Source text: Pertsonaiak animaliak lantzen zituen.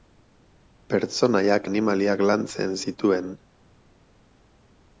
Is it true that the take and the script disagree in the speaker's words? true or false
false